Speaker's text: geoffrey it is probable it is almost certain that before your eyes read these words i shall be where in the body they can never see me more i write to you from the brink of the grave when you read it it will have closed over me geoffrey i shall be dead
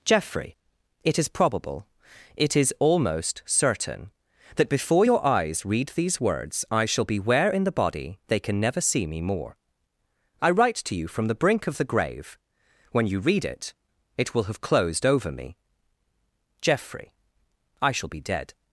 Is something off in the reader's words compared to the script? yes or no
no